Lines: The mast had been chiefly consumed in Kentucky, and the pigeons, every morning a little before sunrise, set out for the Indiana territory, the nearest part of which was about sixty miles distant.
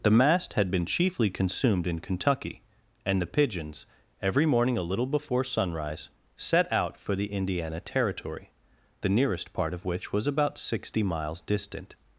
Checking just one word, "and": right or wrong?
right